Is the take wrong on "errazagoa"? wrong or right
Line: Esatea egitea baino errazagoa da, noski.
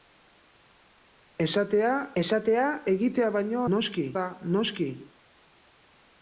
wrong